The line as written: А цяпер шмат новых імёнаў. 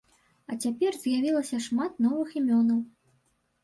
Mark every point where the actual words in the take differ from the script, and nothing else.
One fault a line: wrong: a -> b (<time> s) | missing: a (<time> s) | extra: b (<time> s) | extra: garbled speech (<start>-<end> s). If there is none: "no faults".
extra: з'явілася (1.0 s)